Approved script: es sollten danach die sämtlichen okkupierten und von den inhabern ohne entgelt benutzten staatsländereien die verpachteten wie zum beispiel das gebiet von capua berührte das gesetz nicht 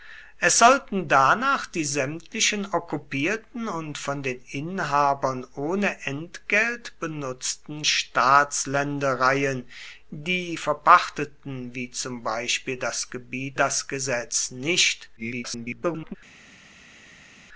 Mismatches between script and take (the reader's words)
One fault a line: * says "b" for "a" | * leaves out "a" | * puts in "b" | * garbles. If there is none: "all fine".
* leaves out "von capua berührte"
* garbles